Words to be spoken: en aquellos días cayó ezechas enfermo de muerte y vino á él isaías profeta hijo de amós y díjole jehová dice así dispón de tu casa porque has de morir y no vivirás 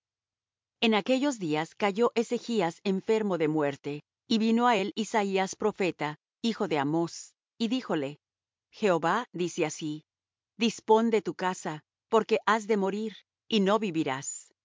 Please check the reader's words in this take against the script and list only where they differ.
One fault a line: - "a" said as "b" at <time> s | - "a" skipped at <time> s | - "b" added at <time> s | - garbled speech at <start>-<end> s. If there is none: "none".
none